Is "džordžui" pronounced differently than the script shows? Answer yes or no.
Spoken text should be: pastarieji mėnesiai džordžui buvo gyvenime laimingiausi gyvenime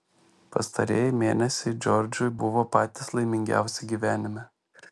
no